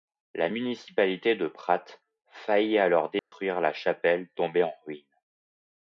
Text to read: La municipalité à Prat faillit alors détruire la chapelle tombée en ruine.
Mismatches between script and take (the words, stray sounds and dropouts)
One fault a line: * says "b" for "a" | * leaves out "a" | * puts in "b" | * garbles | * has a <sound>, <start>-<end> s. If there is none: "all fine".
* says "de" for "à"
* has a dropout, 3.2-3.3 s